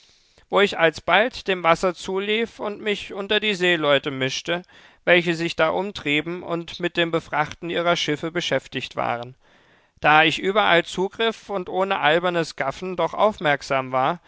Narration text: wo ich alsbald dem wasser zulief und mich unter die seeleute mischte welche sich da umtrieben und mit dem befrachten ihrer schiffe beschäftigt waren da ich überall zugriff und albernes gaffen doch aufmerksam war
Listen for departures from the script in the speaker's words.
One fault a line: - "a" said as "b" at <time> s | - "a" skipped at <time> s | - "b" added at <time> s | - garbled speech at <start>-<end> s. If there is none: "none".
- "ohne" added at 11.7 s